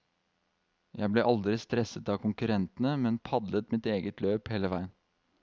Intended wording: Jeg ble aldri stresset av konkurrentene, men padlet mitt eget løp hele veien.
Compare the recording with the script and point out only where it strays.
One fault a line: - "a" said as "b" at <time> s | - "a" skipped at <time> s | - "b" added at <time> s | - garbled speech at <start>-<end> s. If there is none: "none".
none